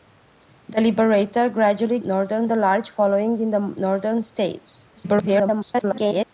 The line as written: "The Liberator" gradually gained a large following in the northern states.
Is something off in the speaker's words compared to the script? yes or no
yes